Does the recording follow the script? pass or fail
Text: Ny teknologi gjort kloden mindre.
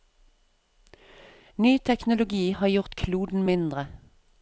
fail